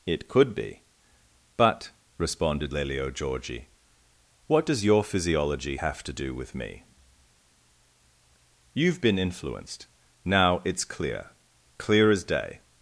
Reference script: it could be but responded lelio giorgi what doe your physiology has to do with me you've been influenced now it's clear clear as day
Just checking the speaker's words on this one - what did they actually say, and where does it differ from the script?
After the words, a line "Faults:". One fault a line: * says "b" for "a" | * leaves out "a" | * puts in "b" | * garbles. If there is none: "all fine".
it could be but responded lelio giorgi what does your physiology have to do with me you've been influenced now it's clear clear as day
Faults:
* says "does" for "doe"
* says "have" for "has"